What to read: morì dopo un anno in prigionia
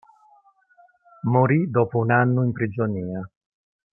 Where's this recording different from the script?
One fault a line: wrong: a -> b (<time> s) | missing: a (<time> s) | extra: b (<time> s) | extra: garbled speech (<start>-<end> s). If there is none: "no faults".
no faults